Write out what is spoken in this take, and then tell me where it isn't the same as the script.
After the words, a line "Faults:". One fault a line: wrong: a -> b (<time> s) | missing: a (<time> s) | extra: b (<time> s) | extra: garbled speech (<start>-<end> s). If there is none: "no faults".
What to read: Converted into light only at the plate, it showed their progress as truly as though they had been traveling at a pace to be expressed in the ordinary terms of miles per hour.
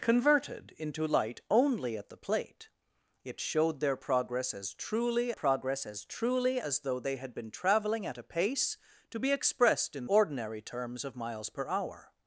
Converted into light only at the plate, it showed their progress as truly progress as truly as though they had been traveling at a pace to be expressed in ordinary terms of miles per hour.
Faults:
extra: progress (5.3 s)
extra: truly as (6.0 s)
missing: the (10.1 s)